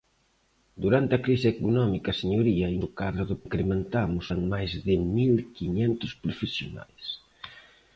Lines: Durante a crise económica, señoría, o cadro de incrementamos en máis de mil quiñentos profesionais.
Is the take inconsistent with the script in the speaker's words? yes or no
no